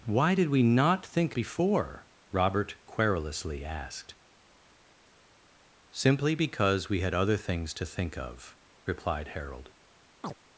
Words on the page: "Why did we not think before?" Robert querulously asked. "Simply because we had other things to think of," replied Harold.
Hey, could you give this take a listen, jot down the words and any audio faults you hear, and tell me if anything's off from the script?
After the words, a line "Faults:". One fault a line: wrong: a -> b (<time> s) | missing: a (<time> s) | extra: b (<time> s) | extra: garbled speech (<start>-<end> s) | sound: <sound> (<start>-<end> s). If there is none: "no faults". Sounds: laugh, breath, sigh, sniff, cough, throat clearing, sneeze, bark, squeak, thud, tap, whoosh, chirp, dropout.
"Why did we not think before?" Robert querulously asked. "Simply because we had other things to think of," replied Harold.
Faults:
sound: chirp (10.2-10.3 s)